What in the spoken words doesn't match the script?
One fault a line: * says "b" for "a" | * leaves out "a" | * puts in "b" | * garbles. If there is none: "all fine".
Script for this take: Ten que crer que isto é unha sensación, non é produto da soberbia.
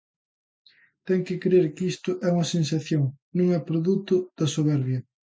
all fine